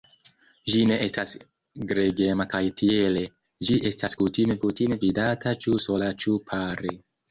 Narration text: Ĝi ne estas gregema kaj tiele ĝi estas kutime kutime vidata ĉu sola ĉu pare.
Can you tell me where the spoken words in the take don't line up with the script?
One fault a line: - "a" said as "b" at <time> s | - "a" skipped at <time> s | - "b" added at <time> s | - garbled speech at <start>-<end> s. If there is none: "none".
none